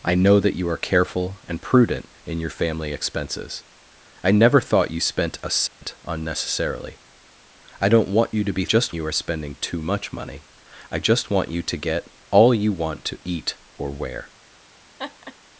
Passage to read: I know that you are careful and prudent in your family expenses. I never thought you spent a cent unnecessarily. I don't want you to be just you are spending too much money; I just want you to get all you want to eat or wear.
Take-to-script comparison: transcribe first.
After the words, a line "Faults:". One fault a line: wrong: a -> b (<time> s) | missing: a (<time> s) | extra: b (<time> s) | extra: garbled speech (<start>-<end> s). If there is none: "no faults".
I know that you are careful and prudent in your family expenses. I never thought you spent a cent unnecessarily. I don't want you to be just you are spending too much money; I just want you to get all you want to eat or wear.
Faults:
no faults